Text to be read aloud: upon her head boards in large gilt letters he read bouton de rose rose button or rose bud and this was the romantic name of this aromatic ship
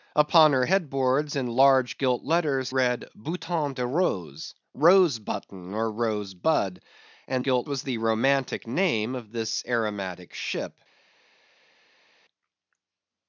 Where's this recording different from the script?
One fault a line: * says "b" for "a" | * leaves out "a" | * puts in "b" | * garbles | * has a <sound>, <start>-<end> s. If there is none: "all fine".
* leaves out "he"
* says "gilt" for "this"